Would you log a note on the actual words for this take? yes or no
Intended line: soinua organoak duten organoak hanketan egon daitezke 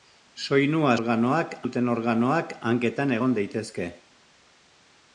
no